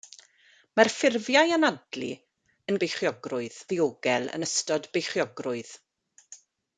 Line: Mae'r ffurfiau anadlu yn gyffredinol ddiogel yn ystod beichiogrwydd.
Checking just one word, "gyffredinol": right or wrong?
wrong